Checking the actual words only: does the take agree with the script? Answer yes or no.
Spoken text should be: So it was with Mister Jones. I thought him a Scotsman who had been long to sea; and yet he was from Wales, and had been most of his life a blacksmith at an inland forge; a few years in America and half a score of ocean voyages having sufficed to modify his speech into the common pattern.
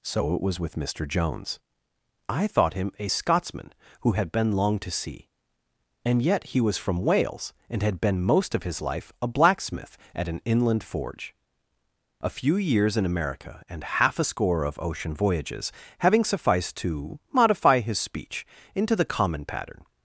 yes